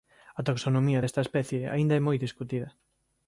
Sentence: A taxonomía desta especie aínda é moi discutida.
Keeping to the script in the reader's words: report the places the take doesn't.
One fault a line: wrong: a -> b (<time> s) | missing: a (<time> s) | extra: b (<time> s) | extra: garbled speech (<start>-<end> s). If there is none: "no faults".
no faults